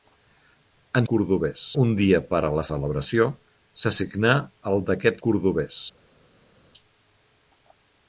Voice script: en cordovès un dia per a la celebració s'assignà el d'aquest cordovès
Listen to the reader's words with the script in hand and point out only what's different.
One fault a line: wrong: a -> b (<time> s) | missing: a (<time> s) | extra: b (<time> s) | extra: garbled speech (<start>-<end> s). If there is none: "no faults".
no faults